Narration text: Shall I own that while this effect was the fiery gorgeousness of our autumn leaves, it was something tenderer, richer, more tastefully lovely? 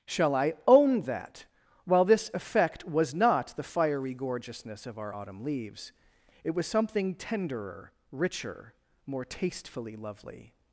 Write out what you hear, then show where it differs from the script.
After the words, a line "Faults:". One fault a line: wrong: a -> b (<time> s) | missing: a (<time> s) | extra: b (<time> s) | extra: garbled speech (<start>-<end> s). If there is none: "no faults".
Shall I own that while this effect was not the fiery gorgeousness of our autumn leaves, it was something tenderer, richer, more tastefully lovely?
Faults:
extra: not (3.1 s)